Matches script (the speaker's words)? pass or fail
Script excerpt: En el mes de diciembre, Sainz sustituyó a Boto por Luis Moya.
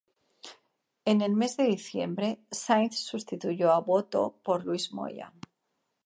pass